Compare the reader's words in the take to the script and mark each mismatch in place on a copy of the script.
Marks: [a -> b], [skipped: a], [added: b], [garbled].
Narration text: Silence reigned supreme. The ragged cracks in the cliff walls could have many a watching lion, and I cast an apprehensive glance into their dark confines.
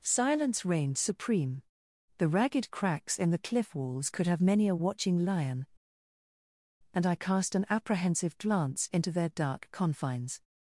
Silence reigned supreme. The ragged cracks in the cliff walls could have many a watching lion, and I cast an apprehensive glance into their dark confines.